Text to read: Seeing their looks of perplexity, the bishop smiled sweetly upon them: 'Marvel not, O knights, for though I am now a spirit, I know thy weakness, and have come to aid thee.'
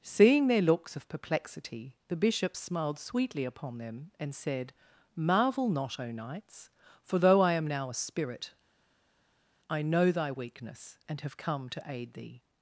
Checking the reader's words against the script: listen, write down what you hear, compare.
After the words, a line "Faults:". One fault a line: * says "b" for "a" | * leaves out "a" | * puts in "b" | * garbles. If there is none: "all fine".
Seeing their looks of perplexity, the bishop smiled sweetly upon them, and said: 'Marvel not, O knights, for though I am now a spirit, I know thy weakness, and have come to aid thee.'
Faults:
* puts in "and said"